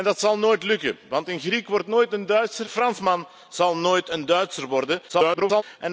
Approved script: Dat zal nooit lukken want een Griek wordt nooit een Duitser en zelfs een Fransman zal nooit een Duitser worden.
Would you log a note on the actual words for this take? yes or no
yes